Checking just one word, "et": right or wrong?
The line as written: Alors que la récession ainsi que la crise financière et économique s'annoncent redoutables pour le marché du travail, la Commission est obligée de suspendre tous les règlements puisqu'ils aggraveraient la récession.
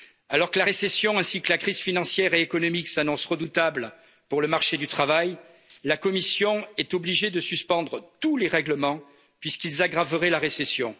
right